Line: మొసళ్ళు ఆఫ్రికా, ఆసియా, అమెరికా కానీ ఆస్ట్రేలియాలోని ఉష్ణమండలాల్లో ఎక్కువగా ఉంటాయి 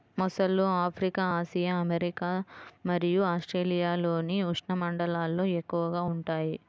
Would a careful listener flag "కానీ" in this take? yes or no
yes